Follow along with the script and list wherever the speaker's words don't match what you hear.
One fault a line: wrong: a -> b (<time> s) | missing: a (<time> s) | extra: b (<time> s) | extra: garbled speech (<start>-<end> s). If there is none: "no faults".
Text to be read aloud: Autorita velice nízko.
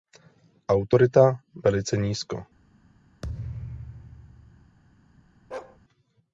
no faults